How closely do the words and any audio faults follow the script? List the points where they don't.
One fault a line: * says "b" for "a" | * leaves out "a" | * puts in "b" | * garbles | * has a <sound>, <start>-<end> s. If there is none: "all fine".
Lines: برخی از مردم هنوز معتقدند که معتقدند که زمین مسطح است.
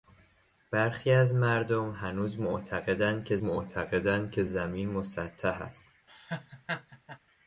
* has a laugh, 6.1-7.2 s